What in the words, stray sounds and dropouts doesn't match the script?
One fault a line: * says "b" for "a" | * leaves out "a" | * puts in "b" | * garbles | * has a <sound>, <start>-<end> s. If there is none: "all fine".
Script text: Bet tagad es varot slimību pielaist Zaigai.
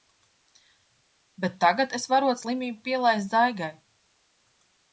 all fine